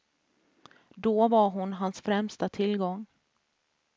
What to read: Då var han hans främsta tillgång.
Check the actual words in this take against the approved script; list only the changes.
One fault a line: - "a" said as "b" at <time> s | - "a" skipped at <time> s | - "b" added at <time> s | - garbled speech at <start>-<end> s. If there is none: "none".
- "han" said as "hon" at 1.5 s